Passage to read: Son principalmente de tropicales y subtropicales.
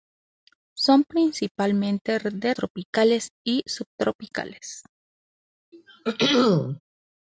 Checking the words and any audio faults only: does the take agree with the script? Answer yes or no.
no